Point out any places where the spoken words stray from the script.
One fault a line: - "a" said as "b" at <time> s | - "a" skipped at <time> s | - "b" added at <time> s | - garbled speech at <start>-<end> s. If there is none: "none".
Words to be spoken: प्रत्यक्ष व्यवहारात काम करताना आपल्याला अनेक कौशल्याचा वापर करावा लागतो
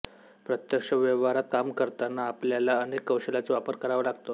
none